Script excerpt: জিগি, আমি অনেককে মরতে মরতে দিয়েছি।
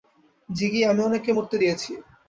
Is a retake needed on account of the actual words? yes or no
yes